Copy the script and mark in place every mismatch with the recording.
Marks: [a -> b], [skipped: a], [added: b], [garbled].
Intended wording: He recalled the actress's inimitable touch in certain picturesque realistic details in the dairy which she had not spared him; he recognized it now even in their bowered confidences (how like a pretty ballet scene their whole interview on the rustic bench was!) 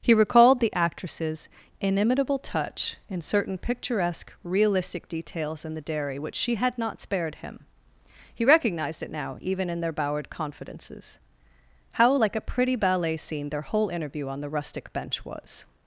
He recalled the actress's inimitable touch in certain picturesque realistic details in the dairy which she had not spared him; he recognized it now even in their bowered confidences (how like a pretty ballet scene their whole interview on the rustic bench was!)